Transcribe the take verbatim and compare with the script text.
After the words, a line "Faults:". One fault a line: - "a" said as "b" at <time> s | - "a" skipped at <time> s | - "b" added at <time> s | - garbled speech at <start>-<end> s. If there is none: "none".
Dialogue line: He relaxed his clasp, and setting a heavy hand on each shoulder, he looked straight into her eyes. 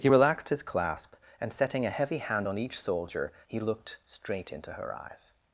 He relaxed his clasp, and setting a heavy hand on each soldier, he looked straight into her eyes.
Faults:
- "shoulder" said as "soldier" at 2.8 s